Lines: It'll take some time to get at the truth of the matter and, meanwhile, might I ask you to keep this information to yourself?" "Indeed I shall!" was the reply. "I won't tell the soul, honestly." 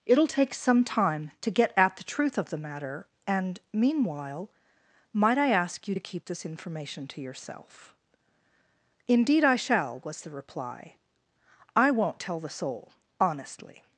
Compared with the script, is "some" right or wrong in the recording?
right